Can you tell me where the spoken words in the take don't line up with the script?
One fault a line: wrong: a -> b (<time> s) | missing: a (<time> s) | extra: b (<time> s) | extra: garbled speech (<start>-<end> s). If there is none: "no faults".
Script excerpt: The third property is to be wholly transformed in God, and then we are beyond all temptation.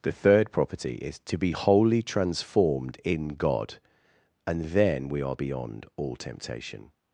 no faults